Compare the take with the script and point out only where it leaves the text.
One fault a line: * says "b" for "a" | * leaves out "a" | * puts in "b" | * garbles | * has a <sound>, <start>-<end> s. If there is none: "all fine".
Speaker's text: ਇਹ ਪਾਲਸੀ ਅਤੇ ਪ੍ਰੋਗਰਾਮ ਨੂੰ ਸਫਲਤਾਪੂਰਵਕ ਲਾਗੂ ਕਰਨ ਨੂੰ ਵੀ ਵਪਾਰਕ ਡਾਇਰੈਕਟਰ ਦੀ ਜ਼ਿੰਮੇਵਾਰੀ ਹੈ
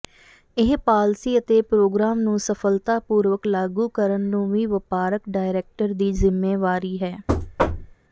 * has a thud, 7.3-8.0 s